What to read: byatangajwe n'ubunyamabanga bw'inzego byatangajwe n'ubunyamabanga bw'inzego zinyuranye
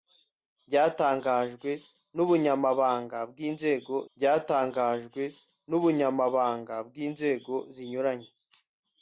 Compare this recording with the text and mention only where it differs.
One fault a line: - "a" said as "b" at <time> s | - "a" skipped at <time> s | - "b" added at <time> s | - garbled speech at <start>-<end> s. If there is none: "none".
none